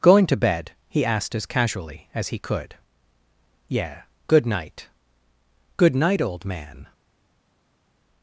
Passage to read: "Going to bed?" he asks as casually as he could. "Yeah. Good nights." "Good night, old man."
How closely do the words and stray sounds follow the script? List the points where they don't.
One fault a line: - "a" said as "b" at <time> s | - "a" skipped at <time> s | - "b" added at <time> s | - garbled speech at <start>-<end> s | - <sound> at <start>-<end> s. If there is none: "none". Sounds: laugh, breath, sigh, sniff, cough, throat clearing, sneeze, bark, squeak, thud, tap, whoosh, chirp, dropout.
- "asks" said as "asked" at 1.1 s
- "nights" said as "night" at 4.5 s